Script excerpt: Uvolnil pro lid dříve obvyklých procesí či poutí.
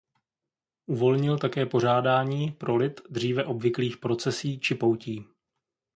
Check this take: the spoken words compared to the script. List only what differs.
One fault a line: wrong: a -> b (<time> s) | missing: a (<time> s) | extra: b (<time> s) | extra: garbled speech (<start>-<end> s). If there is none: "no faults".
extra: také pořádání (1.4 s)